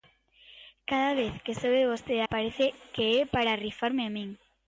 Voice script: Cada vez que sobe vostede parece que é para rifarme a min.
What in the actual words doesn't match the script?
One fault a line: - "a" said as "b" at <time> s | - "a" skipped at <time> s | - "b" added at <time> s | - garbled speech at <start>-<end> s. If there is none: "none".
none